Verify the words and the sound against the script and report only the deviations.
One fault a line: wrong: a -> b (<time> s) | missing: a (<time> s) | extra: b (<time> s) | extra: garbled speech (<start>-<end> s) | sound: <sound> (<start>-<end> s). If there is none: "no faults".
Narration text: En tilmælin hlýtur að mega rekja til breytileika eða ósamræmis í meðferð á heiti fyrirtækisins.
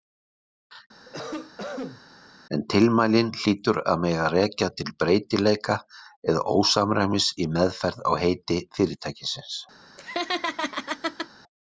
sound: cough (1.0-2.0 s)
sound: laugh (10.0-11.3 s)